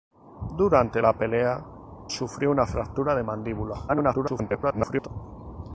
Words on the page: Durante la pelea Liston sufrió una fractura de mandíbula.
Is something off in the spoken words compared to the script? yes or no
yes